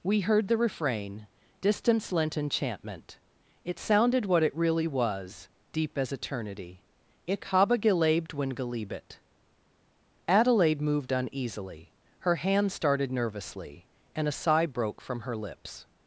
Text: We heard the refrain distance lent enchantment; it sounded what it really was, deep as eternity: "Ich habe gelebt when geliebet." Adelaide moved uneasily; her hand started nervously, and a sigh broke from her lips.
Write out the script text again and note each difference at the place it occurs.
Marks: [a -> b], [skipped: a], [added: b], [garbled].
We heard the refrain distance lent enchantment; it sounded what it really was, deep as eternity: "Ich habe gelebt when geliebet." Adelaide moved uneasily; her hand started nervously, and a sigh broke from her lips.